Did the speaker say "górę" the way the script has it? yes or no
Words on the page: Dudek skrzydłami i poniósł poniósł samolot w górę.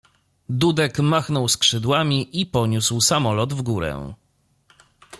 yes